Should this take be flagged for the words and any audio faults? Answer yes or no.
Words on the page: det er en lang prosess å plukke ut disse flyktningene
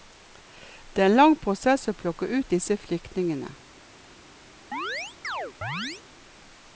yes